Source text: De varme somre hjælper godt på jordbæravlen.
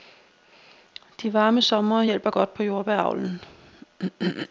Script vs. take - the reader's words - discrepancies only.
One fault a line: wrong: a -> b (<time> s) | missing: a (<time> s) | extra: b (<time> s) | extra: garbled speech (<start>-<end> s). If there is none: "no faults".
no faults